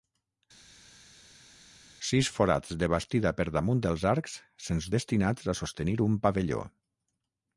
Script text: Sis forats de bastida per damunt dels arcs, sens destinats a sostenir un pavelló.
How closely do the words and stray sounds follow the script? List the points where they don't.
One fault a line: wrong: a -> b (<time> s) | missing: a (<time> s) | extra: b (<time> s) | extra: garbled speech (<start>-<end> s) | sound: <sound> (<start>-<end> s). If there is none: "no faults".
no faults